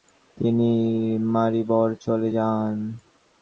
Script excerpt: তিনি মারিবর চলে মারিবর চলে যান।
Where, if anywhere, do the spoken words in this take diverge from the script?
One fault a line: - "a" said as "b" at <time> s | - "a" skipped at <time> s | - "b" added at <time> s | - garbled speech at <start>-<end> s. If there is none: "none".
- "মারিবর চলে" skipped at 2.3 s